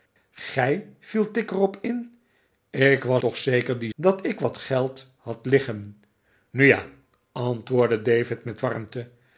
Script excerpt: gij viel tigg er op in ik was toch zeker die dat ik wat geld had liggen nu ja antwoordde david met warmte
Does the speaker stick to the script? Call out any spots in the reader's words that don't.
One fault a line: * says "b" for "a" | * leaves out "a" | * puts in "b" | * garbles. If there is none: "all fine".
all fine